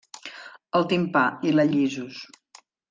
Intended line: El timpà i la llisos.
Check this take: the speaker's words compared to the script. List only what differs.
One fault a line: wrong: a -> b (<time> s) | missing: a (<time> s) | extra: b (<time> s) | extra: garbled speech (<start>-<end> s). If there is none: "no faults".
no faults